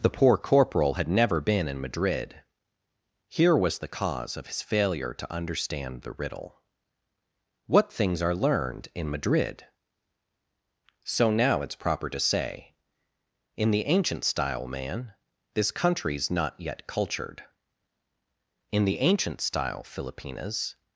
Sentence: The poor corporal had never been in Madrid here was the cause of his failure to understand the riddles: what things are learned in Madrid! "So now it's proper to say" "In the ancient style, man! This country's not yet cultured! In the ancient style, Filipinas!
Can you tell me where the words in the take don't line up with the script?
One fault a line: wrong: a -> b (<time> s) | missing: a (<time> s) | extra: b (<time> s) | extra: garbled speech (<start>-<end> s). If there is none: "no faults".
wrong: riddles -> riddle (6.1 s)